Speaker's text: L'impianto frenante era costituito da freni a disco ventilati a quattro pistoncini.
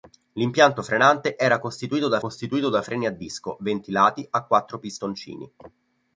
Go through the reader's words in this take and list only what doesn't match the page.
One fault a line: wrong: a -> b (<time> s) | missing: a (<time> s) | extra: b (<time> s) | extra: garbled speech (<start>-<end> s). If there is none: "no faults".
extra: costituito da (2.2 s)